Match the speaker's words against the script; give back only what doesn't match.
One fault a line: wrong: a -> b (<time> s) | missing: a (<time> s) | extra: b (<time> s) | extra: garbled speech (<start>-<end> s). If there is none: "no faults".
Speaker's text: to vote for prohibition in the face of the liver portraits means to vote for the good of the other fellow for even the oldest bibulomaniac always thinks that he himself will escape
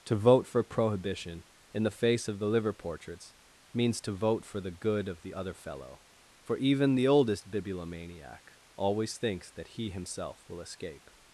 no faults